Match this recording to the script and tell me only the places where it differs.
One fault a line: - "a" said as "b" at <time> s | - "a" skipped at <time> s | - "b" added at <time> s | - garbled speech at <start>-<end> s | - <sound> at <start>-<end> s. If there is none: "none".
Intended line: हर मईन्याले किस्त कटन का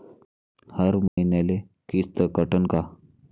- dropout at 1.1-1.2 s